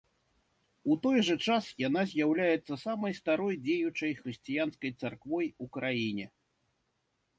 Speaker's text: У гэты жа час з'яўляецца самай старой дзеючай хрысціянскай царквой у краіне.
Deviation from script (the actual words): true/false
true